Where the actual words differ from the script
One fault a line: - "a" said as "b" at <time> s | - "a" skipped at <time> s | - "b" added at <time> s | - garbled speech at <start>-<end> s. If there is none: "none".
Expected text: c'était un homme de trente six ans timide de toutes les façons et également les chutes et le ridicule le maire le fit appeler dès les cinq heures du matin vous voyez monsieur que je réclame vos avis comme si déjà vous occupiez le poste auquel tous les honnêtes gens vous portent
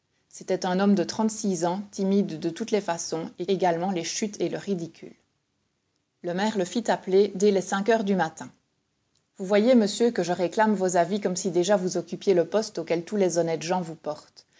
none